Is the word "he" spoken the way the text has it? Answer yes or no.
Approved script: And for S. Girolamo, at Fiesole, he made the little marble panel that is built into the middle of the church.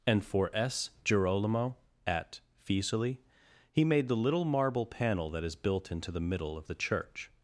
yes